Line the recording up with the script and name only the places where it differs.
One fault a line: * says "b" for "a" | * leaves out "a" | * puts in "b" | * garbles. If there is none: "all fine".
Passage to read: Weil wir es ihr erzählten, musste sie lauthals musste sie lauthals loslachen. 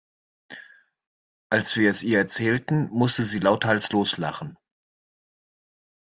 * says "Als" for "Weil"
* leaves out "musste sie lauthals"